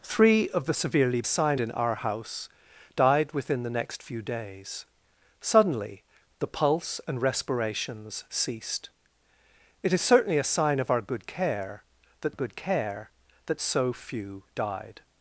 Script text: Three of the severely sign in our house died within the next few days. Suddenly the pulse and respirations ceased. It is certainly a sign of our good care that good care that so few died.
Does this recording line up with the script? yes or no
yes